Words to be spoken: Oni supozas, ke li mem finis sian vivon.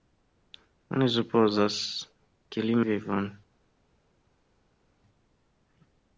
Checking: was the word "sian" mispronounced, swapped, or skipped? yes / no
yes